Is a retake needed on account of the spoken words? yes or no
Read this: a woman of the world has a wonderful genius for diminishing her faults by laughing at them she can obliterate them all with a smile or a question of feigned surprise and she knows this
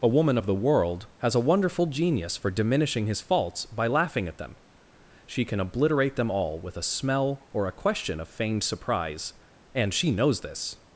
yes